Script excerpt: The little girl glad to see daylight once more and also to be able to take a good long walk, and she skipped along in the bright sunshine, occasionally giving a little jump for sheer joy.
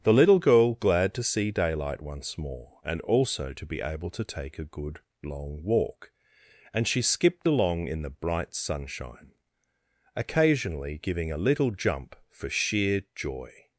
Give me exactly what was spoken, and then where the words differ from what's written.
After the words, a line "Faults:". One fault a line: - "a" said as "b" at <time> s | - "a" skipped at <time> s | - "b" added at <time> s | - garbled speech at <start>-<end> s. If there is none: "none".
The little girl glad to see daylight once more and also to be able to take a good long walk, and she skipped along in the bright sunshine, occasionally giving a little jump for sheer joy.
Faults:
none